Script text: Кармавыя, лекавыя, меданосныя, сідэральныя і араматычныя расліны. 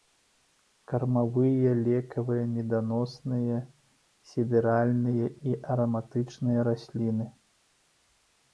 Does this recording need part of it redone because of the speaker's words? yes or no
no